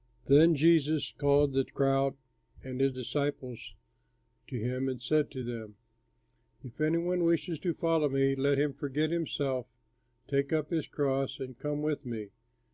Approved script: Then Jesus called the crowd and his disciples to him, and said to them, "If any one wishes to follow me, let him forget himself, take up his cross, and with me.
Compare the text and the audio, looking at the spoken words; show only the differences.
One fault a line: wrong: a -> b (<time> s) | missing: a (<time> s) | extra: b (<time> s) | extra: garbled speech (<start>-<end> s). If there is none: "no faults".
extra: come (11.6 s)